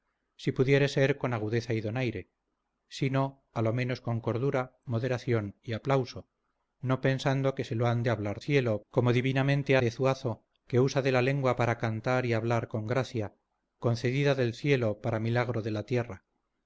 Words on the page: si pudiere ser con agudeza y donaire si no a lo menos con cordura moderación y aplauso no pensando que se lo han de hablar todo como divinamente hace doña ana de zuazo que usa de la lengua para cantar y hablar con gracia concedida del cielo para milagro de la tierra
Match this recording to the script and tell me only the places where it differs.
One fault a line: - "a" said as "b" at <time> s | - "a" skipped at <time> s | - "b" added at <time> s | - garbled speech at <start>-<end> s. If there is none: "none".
- "todo" said as "cielo" at 8.4 s
- "hace doña ana" skipped at 9.8 s